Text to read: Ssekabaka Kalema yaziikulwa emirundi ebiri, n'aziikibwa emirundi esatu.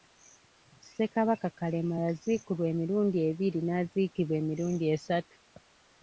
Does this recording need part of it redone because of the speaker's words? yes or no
no